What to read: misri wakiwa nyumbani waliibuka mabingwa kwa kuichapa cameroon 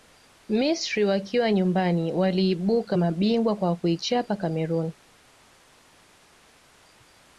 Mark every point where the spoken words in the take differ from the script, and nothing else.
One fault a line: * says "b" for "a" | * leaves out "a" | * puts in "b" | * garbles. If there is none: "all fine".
all fine